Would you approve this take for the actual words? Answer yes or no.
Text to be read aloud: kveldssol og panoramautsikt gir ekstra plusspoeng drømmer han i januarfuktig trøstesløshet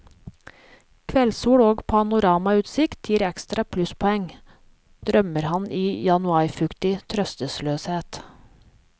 yes